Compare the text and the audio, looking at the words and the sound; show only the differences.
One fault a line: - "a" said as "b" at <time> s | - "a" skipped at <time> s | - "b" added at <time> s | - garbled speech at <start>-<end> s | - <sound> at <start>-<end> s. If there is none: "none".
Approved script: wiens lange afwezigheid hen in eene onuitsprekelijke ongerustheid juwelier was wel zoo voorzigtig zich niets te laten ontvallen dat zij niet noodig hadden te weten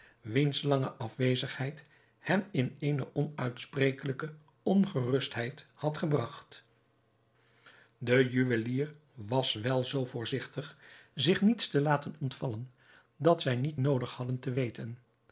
- "had gebragt de" added at 5.7 s